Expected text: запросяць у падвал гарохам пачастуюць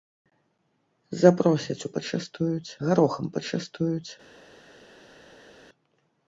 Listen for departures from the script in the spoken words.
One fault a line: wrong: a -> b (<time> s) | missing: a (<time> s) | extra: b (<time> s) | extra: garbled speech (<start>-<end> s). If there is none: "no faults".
wrong: падвал -> пачастуюць (2.0 s)